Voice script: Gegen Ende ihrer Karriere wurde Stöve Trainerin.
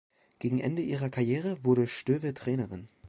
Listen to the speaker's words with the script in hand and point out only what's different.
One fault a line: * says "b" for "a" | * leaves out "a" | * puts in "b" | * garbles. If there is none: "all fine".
all fine